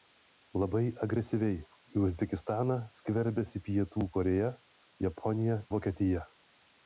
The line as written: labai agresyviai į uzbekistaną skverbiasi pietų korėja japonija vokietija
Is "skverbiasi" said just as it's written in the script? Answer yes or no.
yes